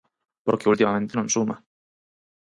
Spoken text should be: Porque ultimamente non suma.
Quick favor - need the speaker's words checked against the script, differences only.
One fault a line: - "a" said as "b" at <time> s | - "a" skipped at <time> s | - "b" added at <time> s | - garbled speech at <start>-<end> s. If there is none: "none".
none